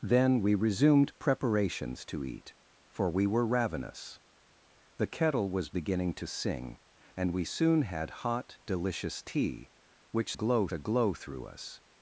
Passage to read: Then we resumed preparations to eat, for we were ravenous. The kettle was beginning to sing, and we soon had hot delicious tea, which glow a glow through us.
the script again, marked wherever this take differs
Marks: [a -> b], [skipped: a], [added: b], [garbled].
Then we resumed preparations to eat, for we were ravenous. The kettle was beginning to sing, and we soon had hot delicious tea, which glow a glow through us.